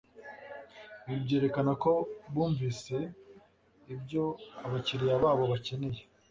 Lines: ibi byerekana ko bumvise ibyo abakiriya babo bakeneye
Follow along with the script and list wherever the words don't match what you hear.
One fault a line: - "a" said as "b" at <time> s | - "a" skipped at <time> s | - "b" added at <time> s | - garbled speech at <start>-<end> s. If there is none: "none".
none